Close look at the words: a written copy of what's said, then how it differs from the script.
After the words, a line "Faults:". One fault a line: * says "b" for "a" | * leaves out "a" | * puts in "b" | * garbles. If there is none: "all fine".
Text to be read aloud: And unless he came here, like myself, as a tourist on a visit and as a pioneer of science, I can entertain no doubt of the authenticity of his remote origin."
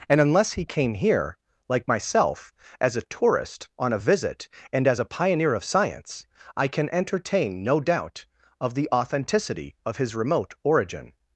And unless he came here, like myself, as a tourist on a visit and as a pioneer of science, I can entertain no doubt of the authenticity of his remote origin."
Faults:
all fine